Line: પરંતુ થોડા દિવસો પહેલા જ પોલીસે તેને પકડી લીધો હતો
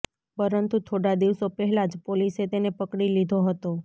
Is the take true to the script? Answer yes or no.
yes